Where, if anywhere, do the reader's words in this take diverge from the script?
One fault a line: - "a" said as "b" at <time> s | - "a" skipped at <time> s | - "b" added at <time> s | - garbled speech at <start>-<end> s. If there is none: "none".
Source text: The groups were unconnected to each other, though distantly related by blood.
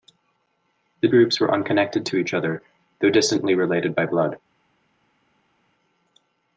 none